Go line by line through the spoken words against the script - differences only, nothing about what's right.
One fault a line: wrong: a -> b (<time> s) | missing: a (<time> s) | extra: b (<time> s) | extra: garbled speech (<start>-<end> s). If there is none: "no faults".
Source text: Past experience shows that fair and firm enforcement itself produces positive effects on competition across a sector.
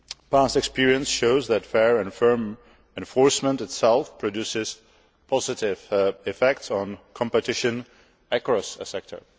no faults